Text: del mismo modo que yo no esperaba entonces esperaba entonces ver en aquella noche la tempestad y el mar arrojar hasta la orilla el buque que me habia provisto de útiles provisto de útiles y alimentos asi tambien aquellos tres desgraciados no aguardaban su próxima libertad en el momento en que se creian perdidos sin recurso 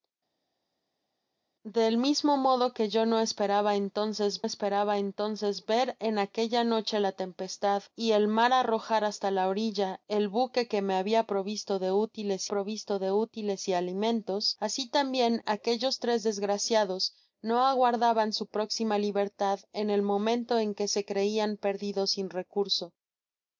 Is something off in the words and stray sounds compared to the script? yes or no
no